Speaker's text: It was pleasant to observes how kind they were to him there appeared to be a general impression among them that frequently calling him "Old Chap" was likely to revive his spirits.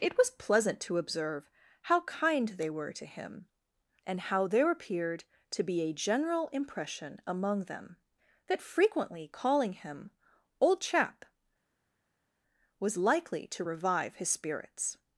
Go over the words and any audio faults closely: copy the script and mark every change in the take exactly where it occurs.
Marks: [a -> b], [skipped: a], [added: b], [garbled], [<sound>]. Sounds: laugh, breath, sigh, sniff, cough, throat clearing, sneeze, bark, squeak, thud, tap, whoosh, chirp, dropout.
It was pleasant to [observes -> observe] how kind they were to him [added: and how] there appeared to be a general impression among them that frequently calling him "Old Chap" was likely to revive his spirits.